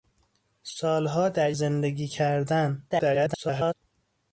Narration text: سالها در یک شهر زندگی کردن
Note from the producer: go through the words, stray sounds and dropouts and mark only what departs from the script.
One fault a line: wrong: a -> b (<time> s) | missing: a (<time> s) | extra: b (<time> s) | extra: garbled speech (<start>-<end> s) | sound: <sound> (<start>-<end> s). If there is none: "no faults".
missing: یک شهر (1.5 s)
extra: garbled speech (2.9-3.7 s)